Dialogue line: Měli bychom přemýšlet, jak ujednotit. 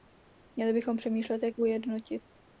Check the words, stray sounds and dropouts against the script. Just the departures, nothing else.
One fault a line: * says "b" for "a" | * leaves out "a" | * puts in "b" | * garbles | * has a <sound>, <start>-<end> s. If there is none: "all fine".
all fine